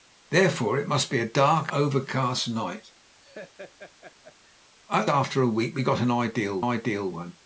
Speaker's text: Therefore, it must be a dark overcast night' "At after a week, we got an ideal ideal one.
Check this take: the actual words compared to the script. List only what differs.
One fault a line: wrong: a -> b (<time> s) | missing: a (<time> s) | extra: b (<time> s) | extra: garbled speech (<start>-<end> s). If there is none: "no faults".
no faults